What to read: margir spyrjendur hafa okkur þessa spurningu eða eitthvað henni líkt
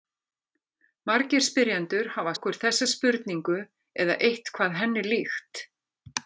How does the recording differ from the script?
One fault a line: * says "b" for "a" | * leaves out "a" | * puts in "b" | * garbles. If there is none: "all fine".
all fine